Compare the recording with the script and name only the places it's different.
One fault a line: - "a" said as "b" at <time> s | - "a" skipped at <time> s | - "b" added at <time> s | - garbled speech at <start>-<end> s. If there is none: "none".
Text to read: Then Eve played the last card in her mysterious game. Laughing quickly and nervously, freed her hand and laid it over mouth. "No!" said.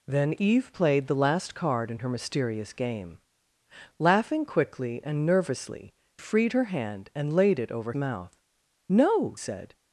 none